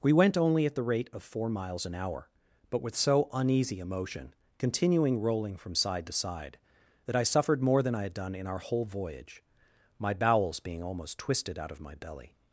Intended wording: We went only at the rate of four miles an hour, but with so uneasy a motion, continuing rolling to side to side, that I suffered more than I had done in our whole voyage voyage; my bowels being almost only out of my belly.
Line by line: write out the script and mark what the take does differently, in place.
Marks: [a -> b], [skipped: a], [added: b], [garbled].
We went only at the rate of four miles an hour, but with so uneasy a motion, continuing rolling [to -> from] side to side, that I suffered more than I had done in our whole voyage [skipped: voyage;] my bowels being almost [only -> twisted] out of my belly.